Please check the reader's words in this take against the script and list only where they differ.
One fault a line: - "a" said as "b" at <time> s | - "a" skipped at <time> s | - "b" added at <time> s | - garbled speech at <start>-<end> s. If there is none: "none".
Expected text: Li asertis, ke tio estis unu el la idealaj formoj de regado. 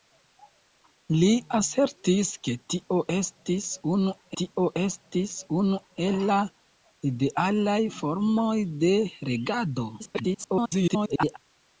- "tio estis unu" added at 4.4 s
- garbled speech at 10.0-11.4 s